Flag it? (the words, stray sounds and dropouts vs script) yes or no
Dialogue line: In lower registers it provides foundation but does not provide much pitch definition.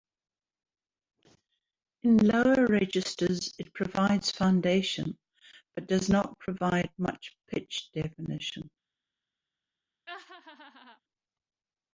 yes